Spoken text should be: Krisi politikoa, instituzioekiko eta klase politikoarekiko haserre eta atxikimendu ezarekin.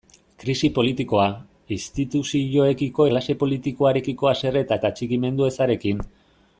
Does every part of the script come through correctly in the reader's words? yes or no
no